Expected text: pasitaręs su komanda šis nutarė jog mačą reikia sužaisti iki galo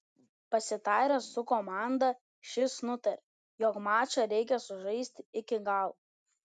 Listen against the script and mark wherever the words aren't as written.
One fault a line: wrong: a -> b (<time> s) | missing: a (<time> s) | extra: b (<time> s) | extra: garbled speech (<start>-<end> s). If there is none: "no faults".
no faults